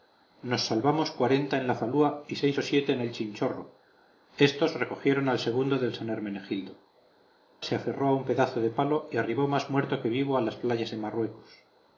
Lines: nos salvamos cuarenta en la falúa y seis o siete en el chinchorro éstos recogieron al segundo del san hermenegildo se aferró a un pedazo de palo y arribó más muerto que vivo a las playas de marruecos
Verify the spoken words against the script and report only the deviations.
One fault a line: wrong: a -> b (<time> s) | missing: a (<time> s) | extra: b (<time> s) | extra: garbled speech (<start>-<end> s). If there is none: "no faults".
no faults